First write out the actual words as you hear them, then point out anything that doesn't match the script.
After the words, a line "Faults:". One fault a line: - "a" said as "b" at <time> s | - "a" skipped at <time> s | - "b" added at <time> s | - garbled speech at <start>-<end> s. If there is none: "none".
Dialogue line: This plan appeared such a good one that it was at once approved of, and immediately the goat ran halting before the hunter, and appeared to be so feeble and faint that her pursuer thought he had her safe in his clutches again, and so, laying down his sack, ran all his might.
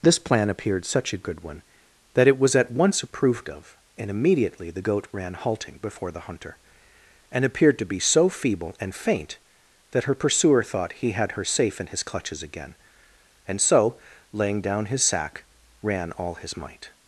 This plan appeared such a good one that it was at once approved of, and immediately the goat ran halting before the hunter, and appeared to be so feeble and faint that her pursuer thought he had her safe in his clutches again, and so, laying down his sack, ran all his might.
Faults:
none